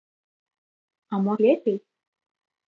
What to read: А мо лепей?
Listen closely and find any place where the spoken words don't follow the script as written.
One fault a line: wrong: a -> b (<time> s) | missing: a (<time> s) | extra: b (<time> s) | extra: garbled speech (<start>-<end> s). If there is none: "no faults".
no faults